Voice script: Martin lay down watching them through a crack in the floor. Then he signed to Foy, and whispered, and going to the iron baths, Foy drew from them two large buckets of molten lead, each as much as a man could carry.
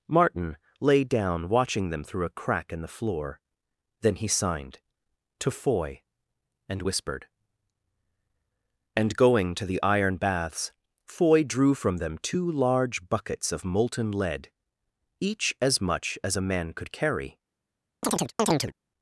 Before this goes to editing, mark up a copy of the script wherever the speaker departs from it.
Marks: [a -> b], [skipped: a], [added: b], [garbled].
Martin lay down watching them through a crack in the floor. Then he signed to Foy, and whispered, and going to the iron baths, Foy drew from them two large buckets of molten lead, each as much as a man could carry.